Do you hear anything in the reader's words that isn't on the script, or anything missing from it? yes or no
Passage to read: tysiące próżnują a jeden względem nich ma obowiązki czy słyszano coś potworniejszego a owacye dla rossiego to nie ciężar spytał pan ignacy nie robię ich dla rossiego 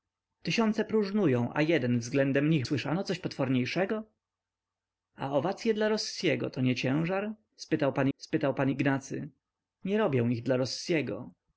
yes